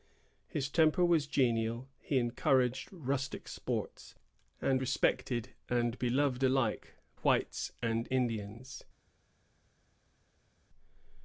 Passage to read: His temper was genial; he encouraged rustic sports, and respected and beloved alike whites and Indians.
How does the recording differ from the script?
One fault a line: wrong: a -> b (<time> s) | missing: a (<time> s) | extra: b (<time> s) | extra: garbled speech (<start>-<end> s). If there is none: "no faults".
no faults